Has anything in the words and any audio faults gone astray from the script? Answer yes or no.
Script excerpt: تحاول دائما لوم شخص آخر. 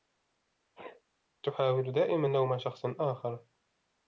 yes